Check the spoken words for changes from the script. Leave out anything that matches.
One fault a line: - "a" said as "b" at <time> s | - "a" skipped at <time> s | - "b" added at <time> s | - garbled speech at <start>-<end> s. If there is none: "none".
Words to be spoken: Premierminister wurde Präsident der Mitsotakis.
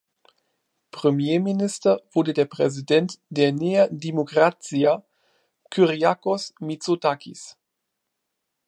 - "der" added at 2.3 s
- "Nea Dimokratia Kyriakos" added at 3.5 s